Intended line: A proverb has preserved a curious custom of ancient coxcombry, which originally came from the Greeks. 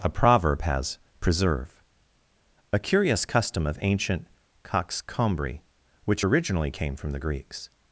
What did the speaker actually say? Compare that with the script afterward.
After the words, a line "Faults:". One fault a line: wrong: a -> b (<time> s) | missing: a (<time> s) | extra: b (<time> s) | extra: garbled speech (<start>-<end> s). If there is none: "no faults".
A proverb has preserve a curious custom of ancient coxcombry, which originally came from the Greeks.
Faults:
wrong: preserved -> preserve (1.2 s)